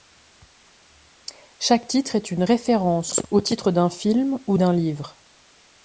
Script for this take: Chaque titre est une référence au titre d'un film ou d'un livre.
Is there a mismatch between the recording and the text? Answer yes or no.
no